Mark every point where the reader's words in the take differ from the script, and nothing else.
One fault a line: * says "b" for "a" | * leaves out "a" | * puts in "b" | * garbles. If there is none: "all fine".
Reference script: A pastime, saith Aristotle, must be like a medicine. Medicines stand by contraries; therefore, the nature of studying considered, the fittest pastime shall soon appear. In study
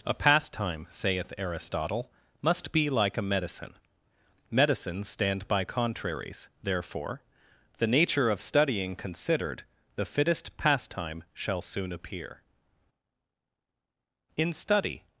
all fine